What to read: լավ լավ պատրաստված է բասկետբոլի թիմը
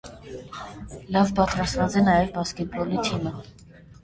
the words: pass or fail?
fail